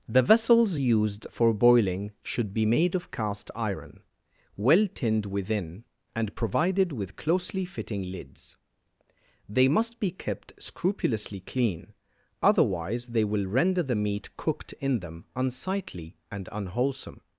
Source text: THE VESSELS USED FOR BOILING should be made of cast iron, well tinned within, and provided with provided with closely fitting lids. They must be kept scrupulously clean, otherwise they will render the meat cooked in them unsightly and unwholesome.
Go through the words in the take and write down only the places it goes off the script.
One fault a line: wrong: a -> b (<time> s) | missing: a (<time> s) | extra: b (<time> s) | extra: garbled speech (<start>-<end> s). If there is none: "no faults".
missing: provided with (7.2 s)